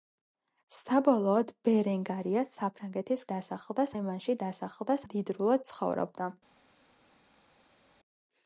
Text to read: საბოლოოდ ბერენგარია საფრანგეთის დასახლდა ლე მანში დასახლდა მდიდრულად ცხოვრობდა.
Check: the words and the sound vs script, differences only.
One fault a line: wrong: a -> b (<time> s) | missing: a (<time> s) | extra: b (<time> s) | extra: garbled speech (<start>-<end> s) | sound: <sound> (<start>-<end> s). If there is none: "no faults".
no faults